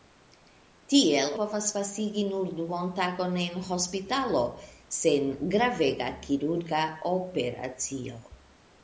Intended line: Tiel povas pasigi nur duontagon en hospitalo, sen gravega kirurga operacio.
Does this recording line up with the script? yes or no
yes